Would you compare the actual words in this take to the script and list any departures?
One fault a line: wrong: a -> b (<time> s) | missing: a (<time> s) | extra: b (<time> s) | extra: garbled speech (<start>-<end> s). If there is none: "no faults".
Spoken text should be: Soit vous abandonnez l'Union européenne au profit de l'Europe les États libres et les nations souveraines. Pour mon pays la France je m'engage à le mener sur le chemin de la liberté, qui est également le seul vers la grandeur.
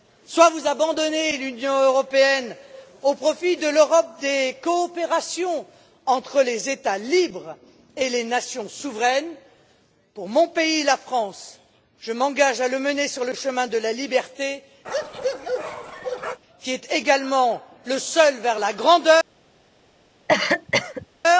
extra: des coopérations entre (4.2 s)